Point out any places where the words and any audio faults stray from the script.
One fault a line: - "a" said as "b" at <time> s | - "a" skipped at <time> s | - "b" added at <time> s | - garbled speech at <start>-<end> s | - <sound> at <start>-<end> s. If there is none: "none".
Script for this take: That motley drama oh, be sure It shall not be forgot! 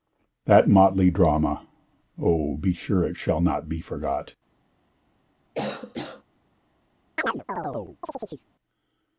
- cough at 5.5-6.2 s
- chirp at 7.2-8.5 s